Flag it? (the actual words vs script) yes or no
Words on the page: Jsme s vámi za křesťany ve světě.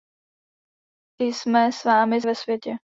yes